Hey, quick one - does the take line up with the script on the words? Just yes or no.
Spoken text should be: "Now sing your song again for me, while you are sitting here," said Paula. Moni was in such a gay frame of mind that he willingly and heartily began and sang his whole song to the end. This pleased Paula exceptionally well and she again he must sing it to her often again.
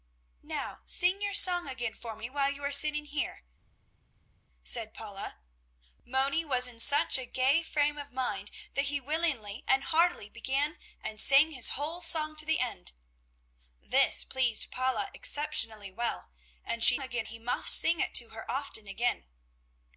yes